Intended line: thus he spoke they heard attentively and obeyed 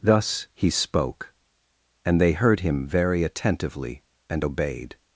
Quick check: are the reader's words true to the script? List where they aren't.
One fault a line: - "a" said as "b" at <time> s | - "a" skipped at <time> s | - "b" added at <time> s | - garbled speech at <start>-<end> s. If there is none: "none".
- "and" added at 2.0 s
- "him very" added at 2.6 s